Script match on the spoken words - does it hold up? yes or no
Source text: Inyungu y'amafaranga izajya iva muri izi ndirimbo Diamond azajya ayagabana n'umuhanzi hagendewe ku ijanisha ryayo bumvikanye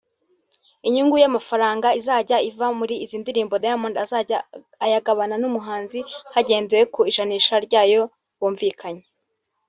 yes